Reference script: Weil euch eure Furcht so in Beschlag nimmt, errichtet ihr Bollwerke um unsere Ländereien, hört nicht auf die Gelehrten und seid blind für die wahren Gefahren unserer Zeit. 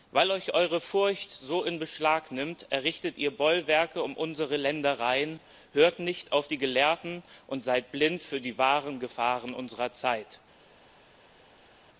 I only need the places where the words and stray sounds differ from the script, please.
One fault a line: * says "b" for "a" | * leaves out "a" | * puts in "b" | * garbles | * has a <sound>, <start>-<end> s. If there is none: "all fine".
all fine